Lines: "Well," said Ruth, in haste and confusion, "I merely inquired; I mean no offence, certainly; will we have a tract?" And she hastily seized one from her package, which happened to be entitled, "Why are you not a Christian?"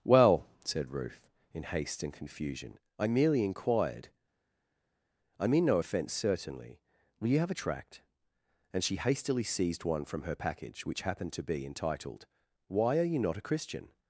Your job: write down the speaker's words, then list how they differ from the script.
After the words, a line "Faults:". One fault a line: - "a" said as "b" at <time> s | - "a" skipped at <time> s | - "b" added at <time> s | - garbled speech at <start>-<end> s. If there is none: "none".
"Well," said Ruth, in haste and confusion, "I merely inquired; I mean no offence, certainly; will you have a tract?" And she hastily seized one from her package, which happened to be entitled, "Why are you not a Christian?"
Faults:
- "we" said as "you" at 7.3 s